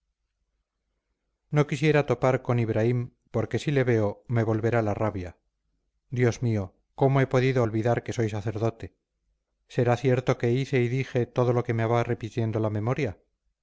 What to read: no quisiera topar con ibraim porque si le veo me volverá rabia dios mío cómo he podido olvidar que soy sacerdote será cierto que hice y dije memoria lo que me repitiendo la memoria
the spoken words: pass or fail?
fail